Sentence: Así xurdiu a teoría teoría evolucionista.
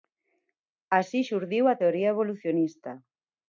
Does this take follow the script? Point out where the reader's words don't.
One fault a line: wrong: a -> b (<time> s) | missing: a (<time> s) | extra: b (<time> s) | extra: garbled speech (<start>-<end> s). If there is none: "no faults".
missing: teoría (2.1 s)